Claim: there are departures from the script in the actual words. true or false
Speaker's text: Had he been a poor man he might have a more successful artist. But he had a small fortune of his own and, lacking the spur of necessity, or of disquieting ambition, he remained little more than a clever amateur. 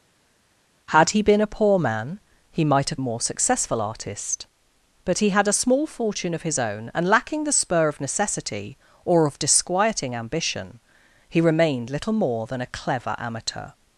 false